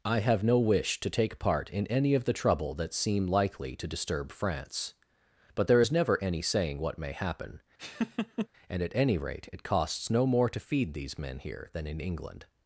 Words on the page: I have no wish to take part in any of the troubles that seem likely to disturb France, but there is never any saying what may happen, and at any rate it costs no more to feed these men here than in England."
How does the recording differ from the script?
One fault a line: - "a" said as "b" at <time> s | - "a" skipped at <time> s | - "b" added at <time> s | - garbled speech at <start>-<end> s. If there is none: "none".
- "troubles" said as "trouble" at 2.3 s